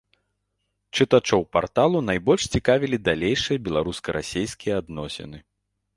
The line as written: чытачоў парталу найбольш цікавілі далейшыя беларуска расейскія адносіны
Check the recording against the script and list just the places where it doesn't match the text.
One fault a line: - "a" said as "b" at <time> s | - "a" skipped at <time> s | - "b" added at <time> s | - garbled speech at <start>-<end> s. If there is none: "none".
none